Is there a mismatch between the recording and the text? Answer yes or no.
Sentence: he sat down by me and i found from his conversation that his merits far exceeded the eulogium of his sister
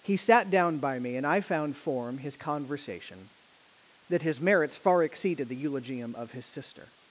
yes